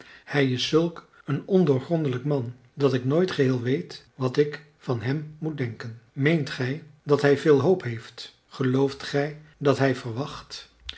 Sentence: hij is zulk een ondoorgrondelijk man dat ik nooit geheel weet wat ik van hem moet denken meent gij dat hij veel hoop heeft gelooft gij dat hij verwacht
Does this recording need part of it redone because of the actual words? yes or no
no